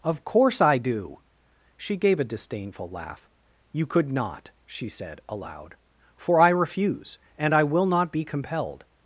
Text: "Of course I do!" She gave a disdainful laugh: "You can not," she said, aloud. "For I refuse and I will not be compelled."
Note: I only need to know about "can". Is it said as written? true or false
false